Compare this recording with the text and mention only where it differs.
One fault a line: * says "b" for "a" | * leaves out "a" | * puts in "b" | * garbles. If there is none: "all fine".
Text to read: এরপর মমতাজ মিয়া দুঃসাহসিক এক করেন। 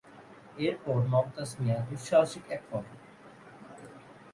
all fine